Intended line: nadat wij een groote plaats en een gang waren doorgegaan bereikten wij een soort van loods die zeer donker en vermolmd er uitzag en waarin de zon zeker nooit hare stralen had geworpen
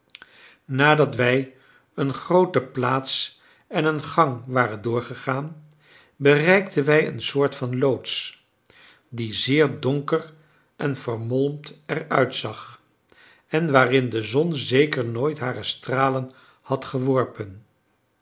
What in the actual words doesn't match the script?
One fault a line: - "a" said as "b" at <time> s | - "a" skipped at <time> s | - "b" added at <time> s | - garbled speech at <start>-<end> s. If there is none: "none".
none